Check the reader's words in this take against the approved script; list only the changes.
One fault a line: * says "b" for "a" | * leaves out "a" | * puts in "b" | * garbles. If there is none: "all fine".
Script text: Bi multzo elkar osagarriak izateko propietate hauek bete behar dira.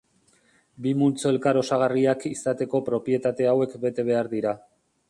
all fine